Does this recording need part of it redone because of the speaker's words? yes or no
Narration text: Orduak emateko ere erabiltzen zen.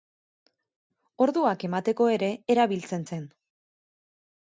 no